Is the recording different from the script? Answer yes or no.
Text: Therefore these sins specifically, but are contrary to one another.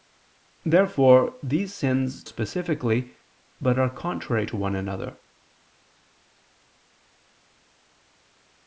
no